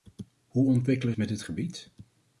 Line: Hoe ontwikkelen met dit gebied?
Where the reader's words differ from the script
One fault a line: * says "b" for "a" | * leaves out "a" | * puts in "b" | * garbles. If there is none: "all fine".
all fine